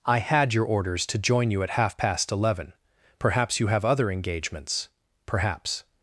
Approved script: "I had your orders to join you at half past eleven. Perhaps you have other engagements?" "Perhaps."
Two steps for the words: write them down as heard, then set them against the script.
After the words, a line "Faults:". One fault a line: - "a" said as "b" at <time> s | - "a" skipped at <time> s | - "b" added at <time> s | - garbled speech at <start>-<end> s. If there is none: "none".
"I had your orders to join you at half past eleven. Perhaps you have other engagements?" "Perhaps."
Faults:
none